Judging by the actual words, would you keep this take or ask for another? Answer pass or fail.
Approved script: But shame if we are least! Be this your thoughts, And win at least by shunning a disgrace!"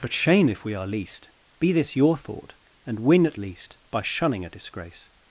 fail